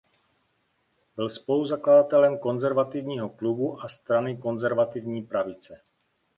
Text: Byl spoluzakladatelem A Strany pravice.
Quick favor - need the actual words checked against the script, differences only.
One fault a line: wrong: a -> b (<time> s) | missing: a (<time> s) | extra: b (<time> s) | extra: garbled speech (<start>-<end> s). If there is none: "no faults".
extra: Konzervativního klubu (2.4 s)
extra: konzervativní (4.4 s)